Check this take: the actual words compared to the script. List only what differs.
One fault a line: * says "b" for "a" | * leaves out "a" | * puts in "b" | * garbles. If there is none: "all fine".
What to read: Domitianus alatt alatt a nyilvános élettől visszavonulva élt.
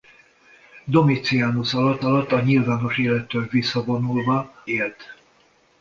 all fine